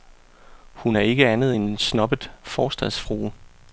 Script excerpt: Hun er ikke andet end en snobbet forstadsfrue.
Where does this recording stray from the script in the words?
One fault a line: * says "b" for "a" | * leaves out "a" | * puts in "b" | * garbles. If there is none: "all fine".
all fine